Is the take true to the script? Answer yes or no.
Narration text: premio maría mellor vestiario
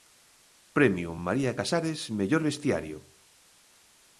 no